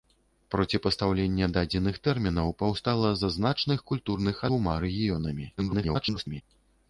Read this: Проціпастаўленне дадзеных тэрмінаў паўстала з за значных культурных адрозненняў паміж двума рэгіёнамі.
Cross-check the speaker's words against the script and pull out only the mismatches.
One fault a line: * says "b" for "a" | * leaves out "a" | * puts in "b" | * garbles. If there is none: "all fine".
* leaves out "адрозненняў паміж"
* garbles